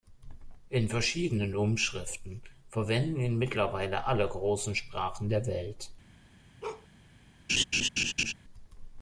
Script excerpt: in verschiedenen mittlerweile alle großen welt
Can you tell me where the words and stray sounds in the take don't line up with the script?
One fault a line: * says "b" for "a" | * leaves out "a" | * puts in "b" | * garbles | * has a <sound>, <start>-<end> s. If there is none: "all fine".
* puts in "umschriften verwenden ihn"
* puts in "sprachen der"
* has a bark, 6.6-6.9 s
* has a laugh, 7.5-8.3 s